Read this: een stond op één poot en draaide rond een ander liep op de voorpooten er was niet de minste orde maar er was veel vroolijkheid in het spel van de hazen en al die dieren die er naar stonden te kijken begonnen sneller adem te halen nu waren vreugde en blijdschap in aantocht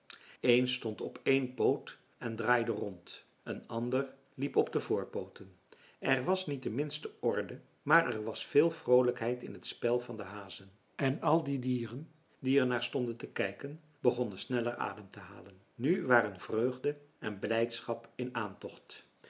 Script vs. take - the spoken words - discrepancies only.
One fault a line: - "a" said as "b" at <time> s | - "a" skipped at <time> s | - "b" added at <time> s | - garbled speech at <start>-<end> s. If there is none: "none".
none